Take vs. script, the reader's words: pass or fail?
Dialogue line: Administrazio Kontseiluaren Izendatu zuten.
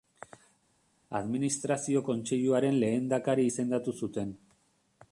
fail